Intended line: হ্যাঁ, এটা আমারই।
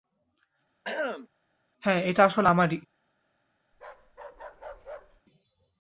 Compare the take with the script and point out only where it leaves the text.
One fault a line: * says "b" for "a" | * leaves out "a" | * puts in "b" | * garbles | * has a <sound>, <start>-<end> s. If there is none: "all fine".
* has a throat clearing, 0.8-1.3 s
* puts in "আসলে"
* has a bark, 3.7-5.2 s